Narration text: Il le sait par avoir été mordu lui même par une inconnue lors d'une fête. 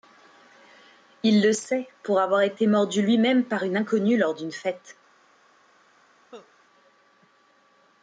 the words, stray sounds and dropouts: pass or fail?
fail